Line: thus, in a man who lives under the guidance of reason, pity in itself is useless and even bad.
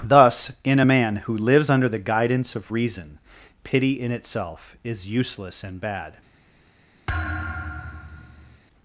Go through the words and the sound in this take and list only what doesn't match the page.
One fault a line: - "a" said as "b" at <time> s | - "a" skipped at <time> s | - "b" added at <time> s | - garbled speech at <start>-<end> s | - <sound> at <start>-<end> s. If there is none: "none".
- "even" skipped at 5.8 s
- thud at 7.1-8.6 s